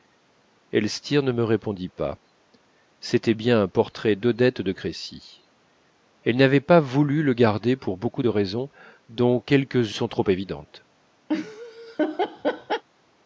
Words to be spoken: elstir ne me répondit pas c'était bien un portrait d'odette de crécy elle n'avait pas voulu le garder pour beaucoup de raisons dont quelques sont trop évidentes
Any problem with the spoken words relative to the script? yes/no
no